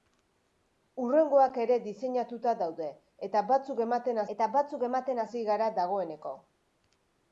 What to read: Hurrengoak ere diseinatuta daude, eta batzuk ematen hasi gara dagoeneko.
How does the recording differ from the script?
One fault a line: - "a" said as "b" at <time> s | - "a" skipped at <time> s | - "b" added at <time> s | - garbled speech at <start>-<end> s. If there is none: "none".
- "eta batzuk ematen" added at 4.4 s